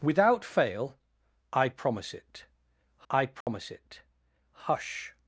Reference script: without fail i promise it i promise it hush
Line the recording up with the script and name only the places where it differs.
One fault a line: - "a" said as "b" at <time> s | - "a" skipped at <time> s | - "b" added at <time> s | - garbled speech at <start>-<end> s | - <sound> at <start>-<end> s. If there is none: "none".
- dropout at 3.4-3.5 s